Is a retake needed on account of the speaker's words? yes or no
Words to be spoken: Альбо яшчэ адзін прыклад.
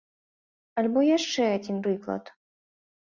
no